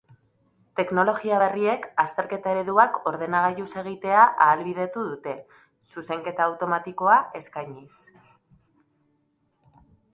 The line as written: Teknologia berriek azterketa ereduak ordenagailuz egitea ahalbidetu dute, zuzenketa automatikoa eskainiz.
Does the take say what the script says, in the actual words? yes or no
yes